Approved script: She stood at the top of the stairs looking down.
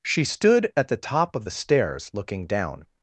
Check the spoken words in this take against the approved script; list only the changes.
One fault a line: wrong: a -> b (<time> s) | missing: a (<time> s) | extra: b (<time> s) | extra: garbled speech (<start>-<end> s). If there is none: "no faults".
no faults